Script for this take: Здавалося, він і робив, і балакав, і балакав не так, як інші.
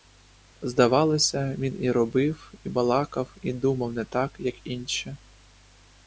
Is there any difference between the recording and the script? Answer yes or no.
yes